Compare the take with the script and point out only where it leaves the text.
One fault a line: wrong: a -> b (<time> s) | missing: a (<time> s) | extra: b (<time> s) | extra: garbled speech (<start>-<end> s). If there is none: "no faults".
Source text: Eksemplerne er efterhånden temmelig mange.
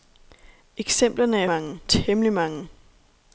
wrong: efterhånden -> mange (1.4 s)